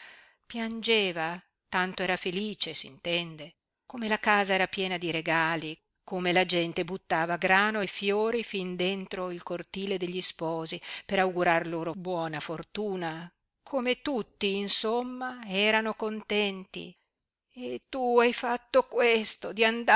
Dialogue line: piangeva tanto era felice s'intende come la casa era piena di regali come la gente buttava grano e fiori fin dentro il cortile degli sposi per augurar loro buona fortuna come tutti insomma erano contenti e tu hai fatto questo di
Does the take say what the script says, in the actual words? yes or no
yes